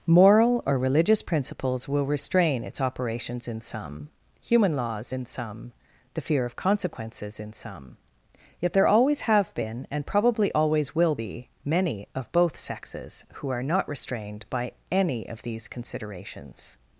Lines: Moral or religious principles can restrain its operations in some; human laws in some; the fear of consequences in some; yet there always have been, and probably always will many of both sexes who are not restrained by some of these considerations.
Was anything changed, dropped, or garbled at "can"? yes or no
yes